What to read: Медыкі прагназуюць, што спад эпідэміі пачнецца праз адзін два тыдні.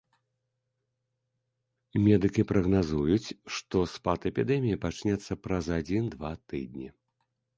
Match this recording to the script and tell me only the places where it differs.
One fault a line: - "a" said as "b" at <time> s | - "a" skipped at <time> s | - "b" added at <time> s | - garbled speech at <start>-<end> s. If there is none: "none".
none